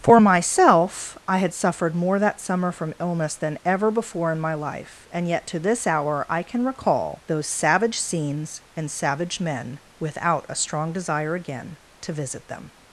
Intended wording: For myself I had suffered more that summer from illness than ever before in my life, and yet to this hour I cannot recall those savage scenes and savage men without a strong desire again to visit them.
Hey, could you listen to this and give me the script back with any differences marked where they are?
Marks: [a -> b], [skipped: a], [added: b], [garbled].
For myself I had suffered more that summer from illness than ever before in my life, and yet to this hour I [cannot -> can] recall those savage scenes and savage men without a strong desire again to visit them.